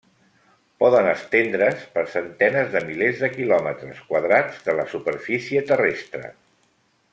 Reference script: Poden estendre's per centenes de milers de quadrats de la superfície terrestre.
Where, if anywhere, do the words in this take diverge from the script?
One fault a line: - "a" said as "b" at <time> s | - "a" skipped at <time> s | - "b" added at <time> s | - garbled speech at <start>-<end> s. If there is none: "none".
- "quilòmetres" added at 3.4 s